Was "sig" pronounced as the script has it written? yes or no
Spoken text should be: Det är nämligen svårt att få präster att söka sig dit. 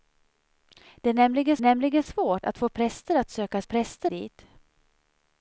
no